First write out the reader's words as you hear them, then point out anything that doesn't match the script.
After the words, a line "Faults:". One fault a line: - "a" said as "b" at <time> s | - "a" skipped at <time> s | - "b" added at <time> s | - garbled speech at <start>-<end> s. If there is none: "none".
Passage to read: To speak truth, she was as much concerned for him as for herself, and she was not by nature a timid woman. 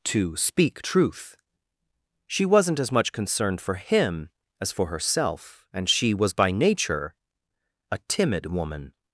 To speak truth, she wasn't as much concerned for him as for herself, and she was by nature a timid woman.
Faults:
- "was" said as "wasn't" at 2.5 s
- "not" skipped at 6.3 s